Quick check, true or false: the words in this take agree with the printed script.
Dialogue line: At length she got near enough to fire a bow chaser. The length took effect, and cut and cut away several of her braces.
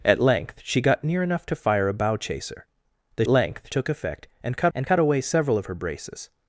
true